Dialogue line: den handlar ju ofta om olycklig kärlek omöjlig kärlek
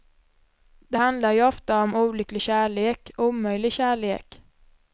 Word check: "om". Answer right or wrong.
right